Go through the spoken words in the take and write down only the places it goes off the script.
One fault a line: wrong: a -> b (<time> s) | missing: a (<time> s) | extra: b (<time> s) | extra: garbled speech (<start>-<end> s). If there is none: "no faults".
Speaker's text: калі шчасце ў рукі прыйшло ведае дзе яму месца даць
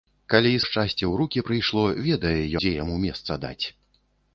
no faults